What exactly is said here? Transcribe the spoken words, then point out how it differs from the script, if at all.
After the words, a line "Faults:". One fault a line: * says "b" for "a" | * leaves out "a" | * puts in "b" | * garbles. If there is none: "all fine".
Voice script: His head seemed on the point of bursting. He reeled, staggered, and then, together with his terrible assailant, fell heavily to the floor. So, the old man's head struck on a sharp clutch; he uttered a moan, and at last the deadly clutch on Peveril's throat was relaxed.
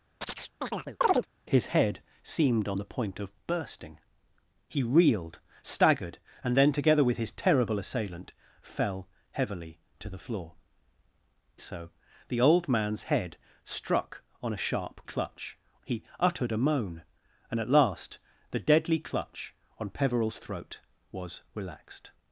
His head seemed on the point of bursting. He reeled, staggered, and then, together with his terrible assailant, fell heavily to the floor. So, the old man's head struck on a sharp clutch; he uttered a moan, and at last the deadly clutch on Peveril's throat was relaxed.
Faults:
all fine